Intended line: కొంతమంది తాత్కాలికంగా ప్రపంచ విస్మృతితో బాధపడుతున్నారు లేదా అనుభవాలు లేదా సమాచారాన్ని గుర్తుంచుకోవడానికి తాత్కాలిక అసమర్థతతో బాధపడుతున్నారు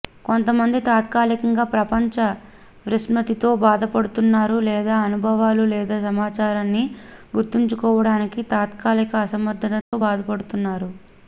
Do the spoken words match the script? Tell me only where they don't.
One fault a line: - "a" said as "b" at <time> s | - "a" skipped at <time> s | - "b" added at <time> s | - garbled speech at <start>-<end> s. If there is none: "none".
none